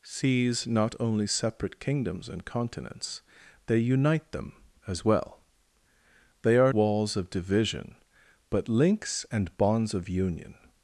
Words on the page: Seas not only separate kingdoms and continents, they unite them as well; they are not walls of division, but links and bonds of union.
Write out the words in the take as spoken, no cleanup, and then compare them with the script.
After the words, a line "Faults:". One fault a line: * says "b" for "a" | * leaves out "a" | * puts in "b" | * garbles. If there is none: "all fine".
Seas not only separate kingdoms and continents, they unite them as well; they are walls of division, but links and bonds of union.
Faults:
* leaves out "not"